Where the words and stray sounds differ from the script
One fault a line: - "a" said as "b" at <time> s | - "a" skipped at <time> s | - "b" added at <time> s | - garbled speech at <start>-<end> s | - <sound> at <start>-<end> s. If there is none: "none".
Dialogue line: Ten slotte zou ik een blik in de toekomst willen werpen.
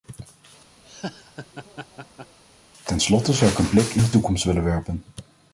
- laugh at 0.8-2.4 s